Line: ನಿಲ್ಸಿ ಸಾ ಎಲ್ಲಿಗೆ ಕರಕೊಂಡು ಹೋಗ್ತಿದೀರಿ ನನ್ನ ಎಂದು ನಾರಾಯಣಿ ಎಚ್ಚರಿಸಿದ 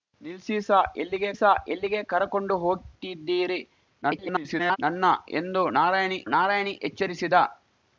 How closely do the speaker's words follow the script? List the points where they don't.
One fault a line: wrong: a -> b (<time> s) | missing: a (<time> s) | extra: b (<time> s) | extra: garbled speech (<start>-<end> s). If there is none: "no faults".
extra: ಸಾ ಎಲ್ಲಿಗೆ (1.3 s)
extra: garbled speech (4.0-4.8 s)
extra: ನಾರಾಯಣಿ (6.3 s)